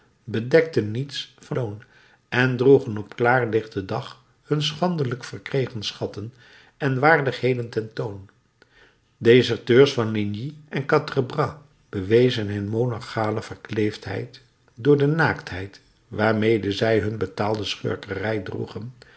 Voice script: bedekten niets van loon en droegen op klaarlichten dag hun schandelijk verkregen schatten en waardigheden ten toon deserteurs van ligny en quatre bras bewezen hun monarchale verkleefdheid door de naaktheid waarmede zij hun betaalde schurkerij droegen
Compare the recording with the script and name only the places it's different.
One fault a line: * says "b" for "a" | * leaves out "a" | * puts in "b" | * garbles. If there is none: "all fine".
all fine